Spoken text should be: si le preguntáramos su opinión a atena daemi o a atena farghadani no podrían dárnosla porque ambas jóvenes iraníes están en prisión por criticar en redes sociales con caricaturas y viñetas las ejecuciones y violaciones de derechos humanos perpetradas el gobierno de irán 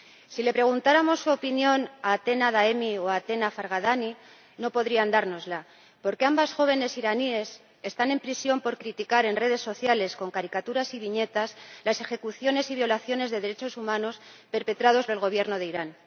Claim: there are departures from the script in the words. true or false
false